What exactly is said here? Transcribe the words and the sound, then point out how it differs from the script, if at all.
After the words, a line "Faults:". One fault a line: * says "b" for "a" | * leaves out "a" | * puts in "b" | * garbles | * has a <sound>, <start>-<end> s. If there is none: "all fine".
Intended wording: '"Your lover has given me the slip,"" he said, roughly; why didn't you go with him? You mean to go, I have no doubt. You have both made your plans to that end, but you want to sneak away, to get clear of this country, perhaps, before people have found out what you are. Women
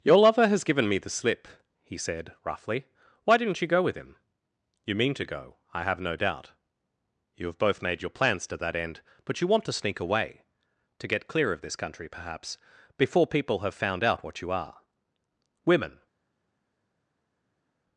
'"Your lover has given me the slip,"" he said, roughly; why didn't you go with him? You mean to go, I have no doubt. You have both made your plans to that end, but you want to sneak away, to get clear of this country, perhaps, before people have found out what you are. Women
Faults:
all fine